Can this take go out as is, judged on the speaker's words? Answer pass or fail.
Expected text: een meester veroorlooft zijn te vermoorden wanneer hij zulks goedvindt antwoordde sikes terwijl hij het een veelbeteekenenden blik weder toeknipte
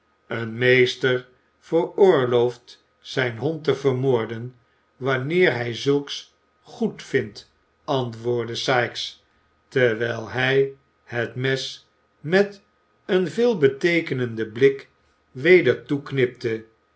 fail